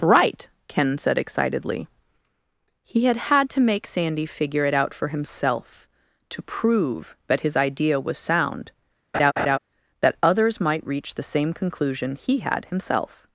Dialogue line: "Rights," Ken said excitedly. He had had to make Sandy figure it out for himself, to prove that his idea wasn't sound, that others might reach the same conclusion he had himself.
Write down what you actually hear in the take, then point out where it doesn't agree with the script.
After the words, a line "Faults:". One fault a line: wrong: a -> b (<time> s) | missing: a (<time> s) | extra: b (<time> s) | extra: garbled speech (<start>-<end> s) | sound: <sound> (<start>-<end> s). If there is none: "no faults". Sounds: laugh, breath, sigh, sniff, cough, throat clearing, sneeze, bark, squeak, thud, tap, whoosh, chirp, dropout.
"Right," Ken said excitedly. He had had to make Sandy figure it out for himself, to prove that his idea was sound, that others might reach the same conclusion he had himself.
Faults:
wrong: Rights -> Right (0.0 s)
wrong: wasn't -> was (8.0 s)
sound: laugh (9.1-9.6 s)